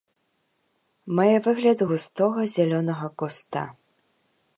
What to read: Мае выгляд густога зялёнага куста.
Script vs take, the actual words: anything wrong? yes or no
no